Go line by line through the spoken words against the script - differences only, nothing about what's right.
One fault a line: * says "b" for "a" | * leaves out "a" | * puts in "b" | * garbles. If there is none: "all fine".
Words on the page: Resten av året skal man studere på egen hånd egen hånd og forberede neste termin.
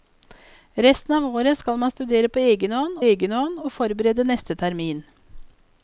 all fine